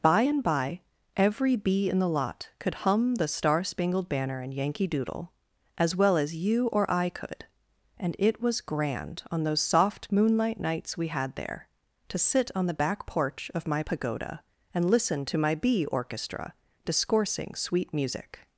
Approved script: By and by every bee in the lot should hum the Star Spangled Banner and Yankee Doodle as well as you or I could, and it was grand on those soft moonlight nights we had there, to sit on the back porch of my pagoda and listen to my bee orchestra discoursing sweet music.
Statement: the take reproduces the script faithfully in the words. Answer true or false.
false